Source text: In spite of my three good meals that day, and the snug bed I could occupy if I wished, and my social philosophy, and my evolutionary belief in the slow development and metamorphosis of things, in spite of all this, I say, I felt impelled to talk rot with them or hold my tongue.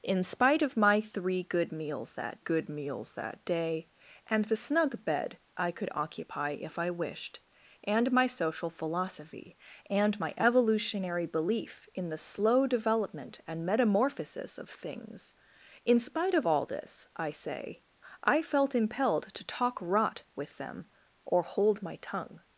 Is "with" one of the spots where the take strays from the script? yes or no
no